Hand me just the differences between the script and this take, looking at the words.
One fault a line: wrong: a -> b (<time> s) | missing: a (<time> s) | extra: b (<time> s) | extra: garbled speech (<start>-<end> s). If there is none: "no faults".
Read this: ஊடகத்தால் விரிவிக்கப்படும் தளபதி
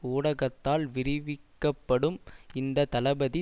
extra: இந்த (2.5 s)